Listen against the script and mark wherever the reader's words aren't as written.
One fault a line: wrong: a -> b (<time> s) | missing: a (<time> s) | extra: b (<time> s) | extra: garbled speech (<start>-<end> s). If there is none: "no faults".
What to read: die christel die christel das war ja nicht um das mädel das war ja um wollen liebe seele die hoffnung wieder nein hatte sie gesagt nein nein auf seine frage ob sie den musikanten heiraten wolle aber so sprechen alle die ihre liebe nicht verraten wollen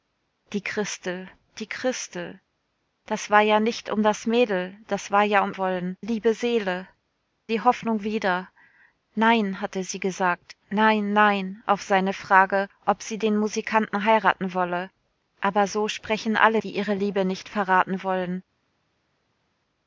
no faults